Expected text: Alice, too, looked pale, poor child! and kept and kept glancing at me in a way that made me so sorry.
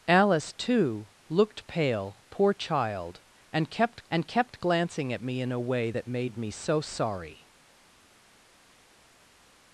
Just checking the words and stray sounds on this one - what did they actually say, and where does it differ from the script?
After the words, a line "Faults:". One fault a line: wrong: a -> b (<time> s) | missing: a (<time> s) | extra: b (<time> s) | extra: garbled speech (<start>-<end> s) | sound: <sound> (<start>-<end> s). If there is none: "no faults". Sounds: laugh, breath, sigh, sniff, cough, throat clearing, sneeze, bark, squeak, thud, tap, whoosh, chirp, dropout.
Alice, too, looked pale, poor child! and kept and kept glancing at me in a way that made me so sorry.
Faults:
no faults